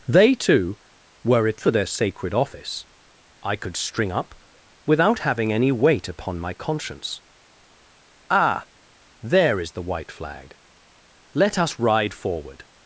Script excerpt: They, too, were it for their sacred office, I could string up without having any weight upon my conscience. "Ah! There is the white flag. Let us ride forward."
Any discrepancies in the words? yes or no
no